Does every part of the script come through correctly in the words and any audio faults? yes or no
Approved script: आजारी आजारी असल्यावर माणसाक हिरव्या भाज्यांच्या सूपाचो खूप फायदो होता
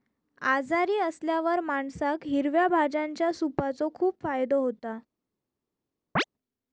no